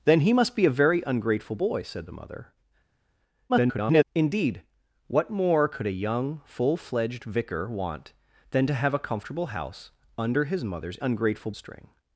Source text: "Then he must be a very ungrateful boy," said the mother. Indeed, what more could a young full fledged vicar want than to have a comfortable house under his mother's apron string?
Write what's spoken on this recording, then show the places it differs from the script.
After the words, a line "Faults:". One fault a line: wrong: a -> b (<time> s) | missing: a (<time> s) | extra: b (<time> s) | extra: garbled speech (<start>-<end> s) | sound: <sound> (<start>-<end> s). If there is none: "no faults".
"Then he must be a very ungrateful boy," said the mother. [garbled] Indeed, what more could a young full fledged vicar want than to have a comfortable house under his mother's ungrateful string?
Faults:
extra: garbled speech (3.5-4.0 s)
wrong: apron -> ungrateful (11.0 s)